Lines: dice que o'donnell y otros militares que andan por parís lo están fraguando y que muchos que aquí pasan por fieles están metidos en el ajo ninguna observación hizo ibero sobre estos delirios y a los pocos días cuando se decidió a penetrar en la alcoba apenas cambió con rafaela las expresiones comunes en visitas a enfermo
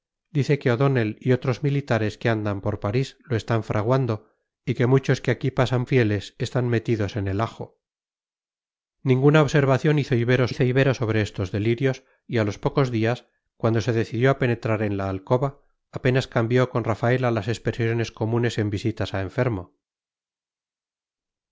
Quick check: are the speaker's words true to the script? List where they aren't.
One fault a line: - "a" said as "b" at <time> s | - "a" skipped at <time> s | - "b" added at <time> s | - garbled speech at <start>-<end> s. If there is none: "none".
- "por" skipped at 5.8 s
- "hizo ibero" added at 10.5 s